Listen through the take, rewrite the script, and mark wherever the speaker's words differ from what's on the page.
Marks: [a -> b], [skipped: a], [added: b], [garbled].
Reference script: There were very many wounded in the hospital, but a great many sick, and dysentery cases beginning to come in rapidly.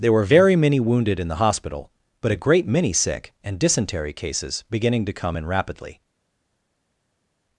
There were very many wounded in the hospital, but a great many sick, and dysentery cases beginning to come in rapidly.